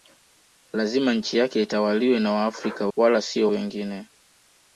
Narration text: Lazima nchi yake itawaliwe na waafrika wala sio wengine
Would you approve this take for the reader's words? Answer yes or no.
yes